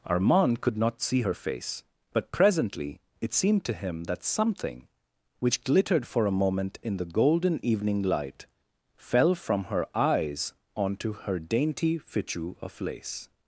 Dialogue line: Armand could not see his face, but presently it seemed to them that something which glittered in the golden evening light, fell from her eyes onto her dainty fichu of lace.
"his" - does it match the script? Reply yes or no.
no